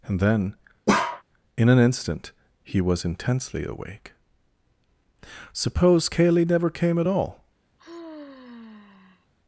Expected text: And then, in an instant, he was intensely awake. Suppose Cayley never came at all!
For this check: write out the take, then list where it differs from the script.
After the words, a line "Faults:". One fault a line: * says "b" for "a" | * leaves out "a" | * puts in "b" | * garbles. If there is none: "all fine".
And then, in an instant, he was intensely awake. Suppose Cayley never came at all!
Faults:
all fine